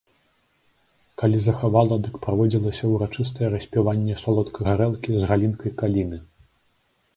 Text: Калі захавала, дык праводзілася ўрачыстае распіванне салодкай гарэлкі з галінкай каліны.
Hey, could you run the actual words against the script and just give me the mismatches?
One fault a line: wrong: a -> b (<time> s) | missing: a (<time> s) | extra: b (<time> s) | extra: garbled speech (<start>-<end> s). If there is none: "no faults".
no faults